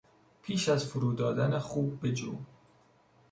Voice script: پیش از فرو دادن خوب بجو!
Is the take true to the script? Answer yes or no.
yes